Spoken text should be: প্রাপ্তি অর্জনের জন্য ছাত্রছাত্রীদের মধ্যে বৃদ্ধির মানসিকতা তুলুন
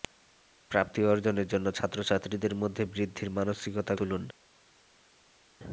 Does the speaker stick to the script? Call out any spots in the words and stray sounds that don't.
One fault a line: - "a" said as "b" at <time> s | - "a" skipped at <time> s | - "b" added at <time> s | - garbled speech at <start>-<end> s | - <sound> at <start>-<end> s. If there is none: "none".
none